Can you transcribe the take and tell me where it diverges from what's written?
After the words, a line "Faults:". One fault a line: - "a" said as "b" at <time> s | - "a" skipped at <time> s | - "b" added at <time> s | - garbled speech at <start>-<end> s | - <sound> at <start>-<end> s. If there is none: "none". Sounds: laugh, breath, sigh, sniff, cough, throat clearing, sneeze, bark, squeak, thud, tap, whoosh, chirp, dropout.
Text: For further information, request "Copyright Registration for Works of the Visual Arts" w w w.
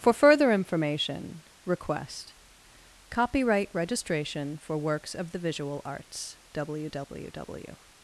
For further information, request "Copyright Registration for Works of the Visual Arts" w w w.
Faults:
none